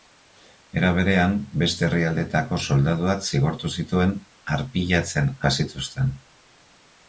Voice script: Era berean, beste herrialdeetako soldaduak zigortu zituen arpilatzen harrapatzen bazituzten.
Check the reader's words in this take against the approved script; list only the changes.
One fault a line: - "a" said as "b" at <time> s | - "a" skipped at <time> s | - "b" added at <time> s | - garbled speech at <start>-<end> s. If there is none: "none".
- "harrapatzen" skipped at 5.3 s